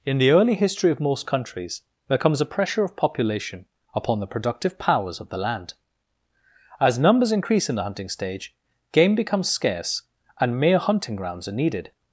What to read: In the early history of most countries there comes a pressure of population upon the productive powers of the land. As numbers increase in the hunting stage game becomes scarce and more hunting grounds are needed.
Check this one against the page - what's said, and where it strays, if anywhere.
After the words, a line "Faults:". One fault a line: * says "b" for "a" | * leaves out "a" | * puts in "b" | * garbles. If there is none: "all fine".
In the early history of most countries there comes a pressure of population upon the productive powers of the land. As numbers increase in the hunting stage game becomes scarce and mere hunting grounds are needed.
Faults:
* says "mere" for "more"